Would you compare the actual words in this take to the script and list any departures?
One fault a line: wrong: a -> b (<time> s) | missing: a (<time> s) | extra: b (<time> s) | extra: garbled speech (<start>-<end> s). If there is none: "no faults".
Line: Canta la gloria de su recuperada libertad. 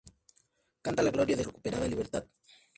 missing: su (1.4 s)